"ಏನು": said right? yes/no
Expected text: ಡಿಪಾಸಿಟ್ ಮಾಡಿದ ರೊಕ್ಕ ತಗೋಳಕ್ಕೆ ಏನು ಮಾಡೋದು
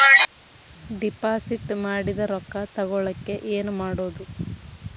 yes